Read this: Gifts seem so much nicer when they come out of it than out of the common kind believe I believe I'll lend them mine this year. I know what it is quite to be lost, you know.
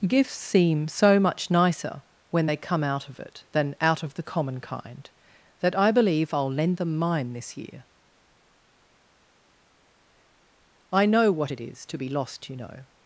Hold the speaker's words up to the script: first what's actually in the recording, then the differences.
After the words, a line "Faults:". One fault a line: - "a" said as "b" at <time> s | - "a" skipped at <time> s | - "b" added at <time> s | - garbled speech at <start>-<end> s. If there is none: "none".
Gifts seem so much nicer when they come out of it than out of the common kind that I believe I'll lend them mine this year. I know what it is to be lost, you know.
Faults:
- "believe" said as "that" at 5.6 s
- "quite" skipped at 11.8 s